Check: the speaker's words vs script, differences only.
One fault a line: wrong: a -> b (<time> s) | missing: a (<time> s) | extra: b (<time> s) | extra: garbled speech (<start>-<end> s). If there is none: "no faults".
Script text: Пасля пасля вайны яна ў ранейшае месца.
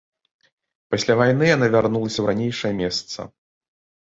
missing: пасля (1.2 s)
extra: вярнулася (1.8 s)